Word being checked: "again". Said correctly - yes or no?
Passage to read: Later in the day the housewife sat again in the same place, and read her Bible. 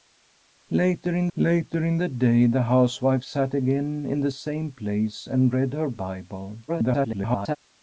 yes